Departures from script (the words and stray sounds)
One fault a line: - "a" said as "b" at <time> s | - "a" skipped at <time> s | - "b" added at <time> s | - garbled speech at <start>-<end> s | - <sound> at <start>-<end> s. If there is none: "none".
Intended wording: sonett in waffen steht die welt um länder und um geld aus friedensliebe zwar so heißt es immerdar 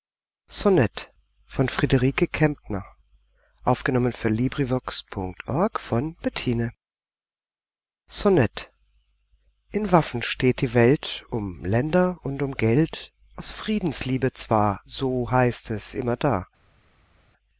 none